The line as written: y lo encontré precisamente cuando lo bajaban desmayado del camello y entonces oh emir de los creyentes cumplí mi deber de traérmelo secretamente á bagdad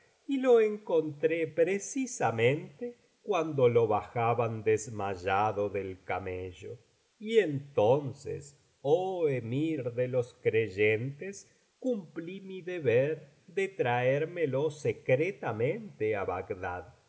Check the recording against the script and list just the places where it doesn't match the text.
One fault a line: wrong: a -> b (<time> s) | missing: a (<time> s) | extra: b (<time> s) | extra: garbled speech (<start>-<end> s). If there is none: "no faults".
no faults